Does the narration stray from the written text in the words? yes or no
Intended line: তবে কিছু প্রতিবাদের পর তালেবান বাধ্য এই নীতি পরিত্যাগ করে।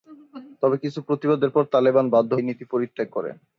no